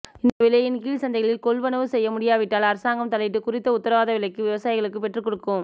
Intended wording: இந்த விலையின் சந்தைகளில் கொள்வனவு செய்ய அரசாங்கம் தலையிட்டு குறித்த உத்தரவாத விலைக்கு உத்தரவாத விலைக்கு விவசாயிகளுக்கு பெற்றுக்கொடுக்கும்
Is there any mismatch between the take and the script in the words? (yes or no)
yes